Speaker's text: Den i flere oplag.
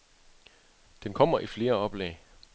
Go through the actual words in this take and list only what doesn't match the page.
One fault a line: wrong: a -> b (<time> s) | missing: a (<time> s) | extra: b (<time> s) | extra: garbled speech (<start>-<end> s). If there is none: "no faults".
extra: kommer (1.1 s)